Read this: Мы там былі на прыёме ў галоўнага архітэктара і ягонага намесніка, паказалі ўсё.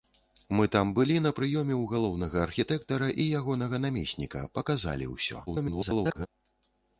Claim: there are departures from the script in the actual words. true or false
true